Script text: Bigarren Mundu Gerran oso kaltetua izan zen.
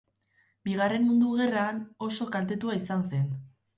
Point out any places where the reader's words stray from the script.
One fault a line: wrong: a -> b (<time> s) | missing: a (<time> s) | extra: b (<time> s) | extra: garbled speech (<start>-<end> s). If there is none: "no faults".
no faults